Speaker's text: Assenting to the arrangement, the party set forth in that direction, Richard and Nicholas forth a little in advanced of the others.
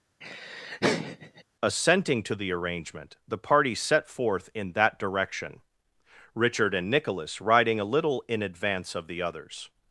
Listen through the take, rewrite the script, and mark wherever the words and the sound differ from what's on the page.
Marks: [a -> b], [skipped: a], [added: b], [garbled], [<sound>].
[laugh] Assenting to the arrangement, the party set forth in that direction, Richard and Nicholas [forth -> riding] a little in [advanced -> advance] of the others.